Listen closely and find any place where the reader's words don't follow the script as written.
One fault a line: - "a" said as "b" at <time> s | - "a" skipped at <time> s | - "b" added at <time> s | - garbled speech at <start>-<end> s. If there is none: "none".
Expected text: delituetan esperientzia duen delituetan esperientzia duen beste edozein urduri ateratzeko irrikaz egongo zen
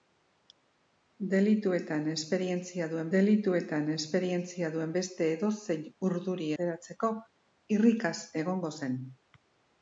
none